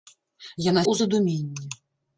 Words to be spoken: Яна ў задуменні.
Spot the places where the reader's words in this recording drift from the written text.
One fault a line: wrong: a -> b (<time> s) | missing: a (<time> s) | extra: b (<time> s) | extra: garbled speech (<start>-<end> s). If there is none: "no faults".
no faults